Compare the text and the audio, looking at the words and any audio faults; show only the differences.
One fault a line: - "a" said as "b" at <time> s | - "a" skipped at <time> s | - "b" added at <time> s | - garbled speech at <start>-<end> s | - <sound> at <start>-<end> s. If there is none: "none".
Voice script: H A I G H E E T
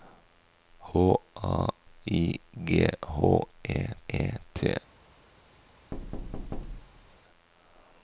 - thud at 5.9-7.2 s